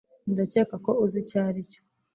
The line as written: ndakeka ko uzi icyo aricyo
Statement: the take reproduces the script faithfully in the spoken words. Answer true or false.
true